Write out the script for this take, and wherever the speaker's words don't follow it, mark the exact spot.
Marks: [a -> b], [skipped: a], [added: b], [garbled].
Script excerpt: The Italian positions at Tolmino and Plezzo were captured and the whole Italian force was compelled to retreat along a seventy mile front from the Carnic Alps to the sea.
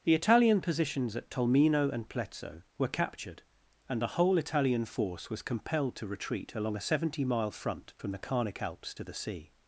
The Italian positions at Tolmino and Plezzo were captured and the whole Italian force was compelled to retreat along a seventy mile front from the Carnic Alps to the sea.